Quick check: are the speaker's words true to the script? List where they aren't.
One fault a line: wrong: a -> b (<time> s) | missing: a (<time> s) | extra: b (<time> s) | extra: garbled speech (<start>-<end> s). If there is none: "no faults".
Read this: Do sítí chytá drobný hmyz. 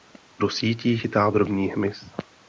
no faults